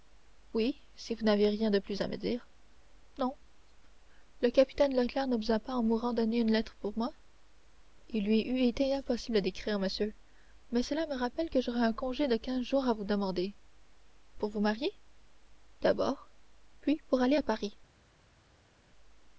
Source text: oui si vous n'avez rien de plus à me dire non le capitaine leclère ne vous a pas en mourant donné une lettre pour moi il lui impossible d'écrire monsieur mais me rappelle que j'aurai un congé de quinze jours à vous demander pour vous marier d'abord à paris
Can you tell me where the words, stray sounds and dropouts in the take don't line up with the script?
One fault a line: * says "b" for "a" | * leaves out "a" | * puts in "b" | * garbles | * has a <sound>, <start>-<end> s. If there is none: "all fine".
* puts in "eût été"
* puts in "cela"
* puts in "puis pour aller"